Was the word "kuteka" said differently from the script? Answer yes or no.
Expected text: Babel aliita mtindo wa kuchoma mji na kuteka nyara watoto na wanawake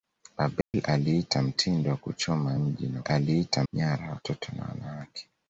yes